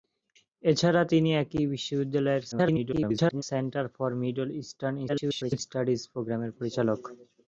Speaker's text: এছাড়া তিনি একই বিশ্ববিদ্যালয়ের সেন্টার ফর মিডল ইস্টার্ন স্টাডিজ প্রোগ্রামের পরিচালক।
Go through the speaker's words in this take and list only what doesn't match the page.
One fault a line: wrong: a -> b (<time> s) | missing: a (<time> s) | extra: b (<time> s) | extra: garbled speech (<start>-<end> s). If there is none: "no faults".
extra: garbled speech (2.5-3.4 s)
extra: garbled speech (5.1-5.6 s)